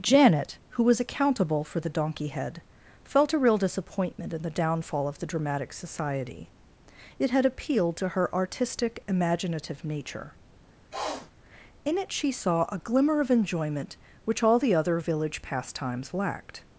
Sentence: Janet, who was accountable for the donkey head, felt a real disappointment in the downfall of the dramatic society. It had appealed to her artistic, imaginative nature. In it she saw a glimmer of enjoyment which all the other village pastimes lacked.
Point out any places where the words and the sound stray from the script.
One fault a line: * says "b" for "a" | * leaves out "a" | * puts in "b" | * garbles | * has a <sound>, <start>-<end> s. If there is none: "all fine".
* has a sniff, 10.9-11.3 s